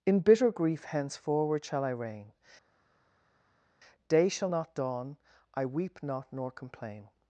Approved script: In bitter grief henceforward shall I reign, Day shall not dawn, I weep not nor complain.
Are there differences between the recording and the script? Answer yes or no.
no